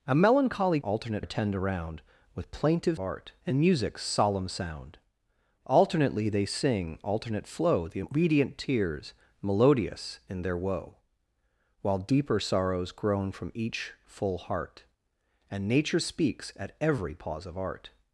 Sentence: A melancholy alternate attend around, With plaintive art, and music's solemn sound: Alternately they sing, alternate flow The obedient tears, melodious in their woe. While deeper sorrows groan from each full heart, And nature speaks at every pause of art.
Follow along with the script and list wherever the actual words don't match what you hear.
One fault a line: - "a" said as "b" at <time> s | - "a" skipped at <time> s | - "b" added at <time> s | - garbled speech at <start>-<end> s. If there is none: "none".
none